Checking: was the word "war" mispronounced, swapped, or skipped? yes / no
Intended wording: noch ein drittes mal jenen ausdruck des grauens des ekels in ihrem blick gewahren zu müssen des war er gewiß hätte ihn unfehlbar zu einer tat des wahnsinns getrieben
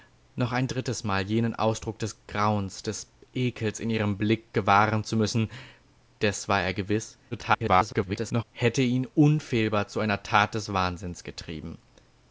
no